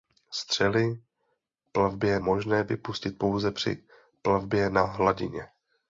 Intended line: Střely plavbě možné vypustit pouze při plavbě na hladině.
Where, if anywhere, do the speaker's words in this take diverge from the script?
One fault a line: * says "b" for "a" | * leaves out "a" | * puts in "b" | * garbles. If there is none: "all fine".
all fine